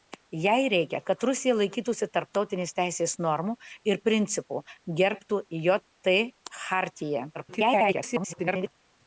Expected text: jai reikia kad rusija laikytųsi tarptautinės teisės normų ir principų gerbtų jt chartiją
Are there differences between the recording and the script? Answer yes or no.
yes